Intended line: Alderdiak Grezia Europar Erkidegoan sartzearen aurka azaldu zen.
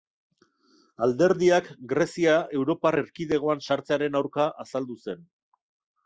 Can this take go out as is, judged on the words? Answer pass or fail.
pass